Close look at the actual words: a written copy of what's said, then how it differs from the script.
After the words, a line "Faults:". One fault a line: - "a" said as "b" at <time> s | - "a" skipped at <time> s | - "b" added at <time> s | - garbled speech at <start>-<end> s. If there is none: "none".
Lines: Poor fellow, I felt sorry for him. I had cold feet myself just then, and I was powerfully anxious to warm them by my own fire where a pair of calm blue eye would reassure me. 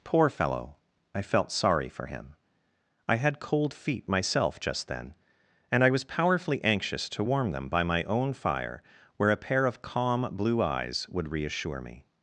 Poor fellow, I felt sorry for him. I had cold feet myself just then, and I was powerfully anxious to warm them by my own fire where a pair of calm blue eyes would reassure me.
Faults:
- "eye" said as "eyes" at 10.6 s